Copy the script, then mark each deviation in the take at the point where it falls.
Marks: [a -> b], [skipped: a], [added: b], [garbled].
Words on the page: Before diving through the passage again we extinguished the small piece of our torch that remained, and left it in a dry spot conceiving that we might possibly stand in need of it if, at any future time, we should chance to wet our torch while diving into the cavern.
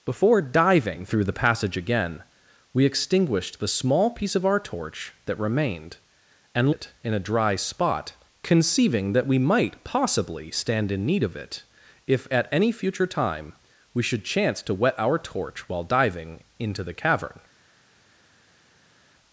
Before diving through the passage again we extinguished the small piece of our torch that remained, and [skipped: left] it in a dry spot conceiving that we might possibly stand in need of it if, at any future time, we should chance to wet our torch while diving into the cavern.